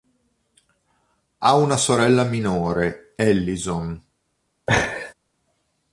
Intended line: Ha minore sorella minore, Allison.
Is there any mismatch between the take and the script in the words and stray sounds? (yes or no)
yes